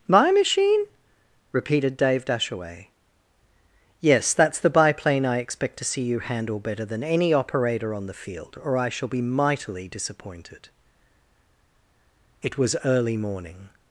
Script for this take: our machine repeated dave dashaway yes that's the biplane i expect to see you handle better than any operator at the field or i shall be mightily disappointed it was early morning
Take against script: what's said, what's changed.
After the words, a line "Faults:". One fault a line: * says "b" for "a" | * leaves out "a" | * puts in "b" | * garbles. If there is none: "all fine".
my machine repeated dave dashaway yes that's the biplane i expect to see you handle better than any operator on the field or i shall be mightily disappointed it was early morning
Faults:
* says "my" for "our"
* says "on" for "at"